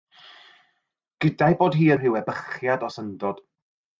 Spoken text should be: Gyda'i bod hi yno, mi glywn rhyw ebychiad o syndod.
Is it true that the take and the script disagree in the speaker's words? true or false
true